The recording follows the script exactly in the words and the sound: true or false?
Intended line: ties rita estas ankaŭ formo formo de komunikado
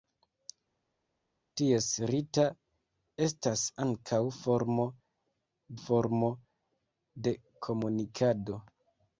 true